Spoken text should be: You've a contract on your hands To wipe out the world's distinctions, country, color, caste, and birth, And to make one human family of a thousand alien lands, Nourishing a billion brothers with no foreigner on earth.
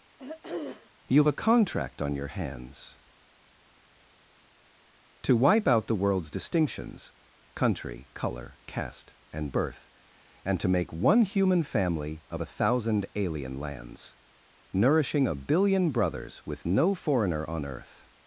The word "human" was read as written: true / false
true